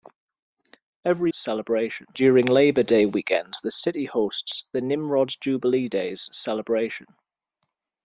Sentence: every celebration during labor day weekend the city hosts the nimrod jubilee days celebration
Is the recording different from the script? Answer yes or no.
no